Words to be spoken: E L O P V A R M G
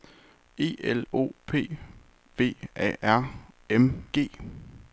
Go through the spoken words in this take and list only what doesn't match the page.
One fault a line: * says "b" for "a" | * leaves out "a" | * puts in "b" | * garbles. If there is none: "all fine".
all fine